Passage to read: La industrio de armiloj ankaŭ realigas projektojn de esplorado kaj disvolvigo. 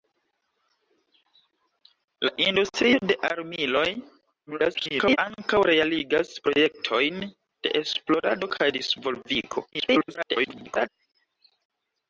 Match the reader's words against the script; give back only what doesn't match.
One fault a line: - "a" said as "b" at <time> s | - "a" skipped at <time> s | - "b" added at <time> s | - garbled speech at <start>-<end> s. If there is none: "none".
- garbled speech at 4.5-5.2 s
- garbled speech at 9.7-10.9 s